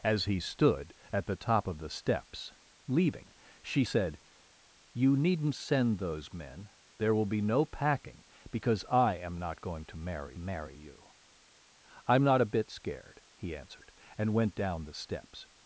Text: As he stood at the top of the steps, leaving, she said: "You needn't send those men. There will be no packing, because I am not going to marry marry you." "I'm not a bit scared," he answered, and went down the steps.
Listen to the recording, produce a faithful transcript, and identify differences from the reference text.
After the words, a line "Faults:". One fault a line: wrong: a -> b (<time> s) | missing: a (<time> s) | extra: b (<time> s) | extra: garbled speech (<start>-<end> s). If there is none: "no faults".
As he stood at the top of the steps, leaving, she said: "You needn't send those men. There will be no packing, because I am not going to marry marry you." "I'm not a bit scared," he answered, and went down the steps.
Faults:
no faults